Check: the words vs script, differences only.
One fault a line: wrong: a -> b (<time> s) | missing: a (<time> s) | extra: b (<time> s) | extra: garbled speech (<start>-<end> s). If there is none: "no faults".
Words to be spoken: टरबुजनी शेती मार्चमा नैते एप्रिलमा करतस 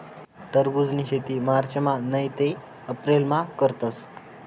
no faults